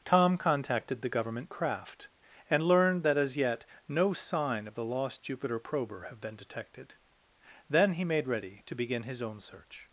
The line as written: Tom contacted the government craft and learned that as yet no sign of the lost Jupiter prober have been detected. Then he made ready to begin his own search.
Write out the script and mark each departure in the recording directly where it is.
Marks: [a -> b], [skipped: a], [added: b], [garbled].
Tom contacted the government craft and learned that as yet no sign of the lost Jupiter prober have been detected. Then he made ready to begin his own search.